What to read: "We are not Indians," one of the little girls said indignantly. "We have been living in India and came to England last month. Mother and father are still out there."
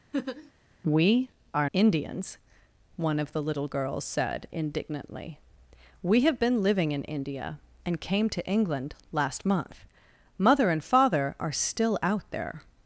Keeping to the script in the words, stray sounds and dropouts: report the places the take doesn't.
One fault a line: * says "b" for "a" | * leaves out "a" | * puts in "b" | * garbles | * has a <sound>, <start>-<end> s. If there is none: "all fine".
* has a laugh, 0.1-0.5 s
* leaves out "not"